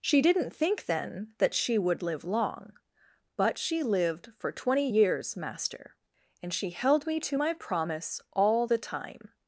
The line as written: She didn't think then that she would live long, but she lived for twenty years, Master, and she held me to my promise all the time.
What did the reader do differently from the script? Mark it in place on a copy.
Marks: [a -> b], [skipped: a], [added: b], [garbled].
She didn't think then that she would live long, but she lived for twenty years, Master, and she held me to my promise all the time.